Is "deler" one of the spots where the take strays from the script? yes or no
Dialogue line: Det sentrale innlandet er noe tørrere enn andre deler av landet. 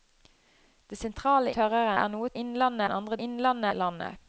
yes